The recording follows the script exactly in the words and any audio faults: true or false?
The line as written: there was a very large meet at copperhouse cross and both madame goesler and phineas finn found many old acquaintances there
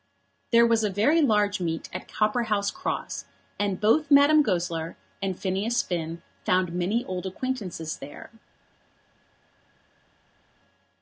true